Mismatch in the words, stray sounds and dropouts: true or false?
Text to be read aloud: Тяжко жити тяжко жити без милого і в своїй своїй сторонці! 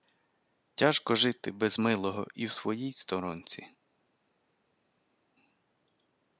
true